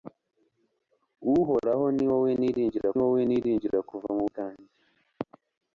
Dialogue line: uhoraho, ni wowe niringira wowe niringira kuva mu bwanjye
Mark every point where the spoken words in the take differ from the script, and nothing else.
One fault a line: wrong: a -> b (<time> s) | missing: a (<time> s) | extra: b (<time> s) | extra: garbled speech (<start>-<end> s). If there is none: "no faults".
no faults